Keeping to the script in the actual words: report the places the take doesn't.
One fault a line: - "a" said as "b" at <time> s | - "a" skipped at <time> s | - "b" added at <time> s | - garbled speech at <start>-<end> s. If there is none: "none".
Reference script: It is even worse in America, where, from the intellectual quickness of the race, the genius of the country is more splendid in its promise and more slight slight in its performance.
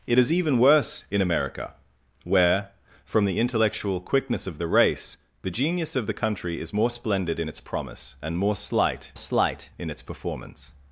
none